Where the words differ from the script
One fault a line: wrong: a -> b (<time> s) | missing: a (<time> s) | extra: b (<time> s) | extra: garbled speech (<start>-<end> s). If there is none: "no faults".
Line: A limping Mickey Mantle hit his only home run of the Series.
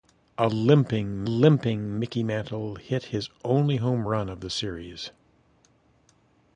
extra: limping (1.2 s)